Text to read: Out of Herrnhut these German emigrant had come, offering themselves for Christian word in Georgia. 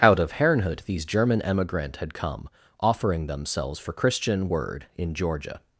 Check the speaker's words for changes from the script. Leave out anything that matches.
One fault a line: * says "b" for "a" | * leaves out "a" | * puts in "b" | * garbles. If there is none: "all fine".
all fine